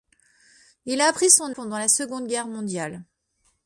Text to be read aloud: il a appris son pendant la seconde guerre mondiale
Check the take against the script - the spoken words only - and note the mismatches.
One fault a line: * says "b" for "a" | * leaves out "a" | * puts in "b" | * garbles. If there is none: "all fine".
all fine